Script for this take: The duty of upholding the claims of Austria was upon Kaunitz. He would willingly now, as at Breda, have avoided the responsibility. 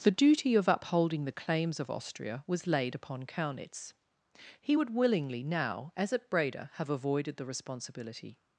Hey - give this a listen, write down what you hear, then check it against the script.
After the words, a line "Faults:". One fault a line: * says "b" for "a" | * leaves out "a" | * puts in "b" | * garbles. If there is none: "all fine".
The duty of upholding the claims of Austria was laid upon Kaunitz. He would willingly now, as at Breda, have avoided the responsibility.
Faults:
* puts in "laid"